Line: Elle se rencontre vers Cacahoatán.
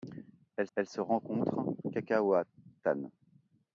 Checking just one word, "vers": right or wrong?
wrong